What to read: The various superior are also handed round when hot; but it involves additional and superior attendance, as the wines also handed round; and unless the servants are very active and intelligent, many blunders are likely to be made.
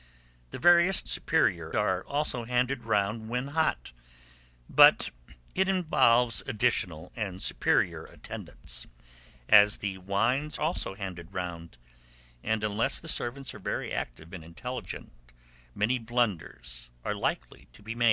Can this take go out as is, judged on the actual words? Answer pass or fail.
pass